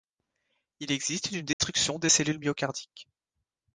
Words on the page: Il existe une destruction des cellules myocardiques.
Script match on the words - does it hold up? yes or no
yes